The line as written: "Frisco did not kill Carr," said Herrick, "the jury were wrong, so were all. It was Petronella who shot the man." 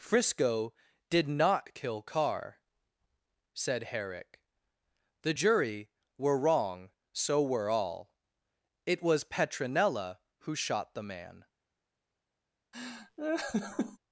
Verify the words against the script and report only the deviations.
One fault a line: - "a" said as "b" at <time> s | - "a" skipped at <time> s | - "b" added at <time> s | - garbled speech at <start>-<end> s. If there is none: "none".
none